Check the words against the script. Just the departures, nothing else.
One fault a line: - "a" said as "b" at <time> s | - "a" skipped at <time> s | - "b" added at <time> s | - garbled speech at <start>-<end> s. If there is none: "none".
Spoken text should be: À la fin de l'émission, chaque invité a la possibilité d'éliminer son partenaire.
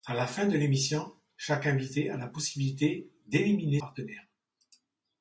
- "son" skipped at 3.8 s